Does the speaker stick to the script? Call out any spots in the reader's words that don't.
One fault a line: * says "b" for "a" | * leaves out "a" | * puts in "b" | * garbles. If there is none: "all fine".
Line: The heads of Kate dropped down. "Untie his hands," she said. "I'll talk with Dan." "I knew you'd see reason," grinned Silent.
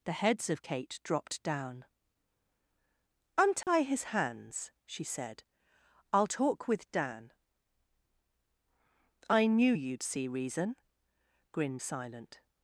all fine